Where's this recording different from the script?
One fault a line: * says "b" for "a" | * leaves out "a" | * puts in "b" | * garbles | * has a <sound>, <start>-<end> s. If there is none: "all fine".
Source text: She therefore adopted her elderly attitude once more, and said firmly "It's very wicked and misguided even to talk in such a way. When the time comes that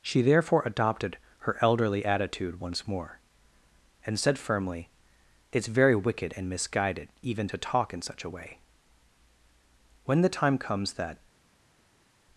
all fine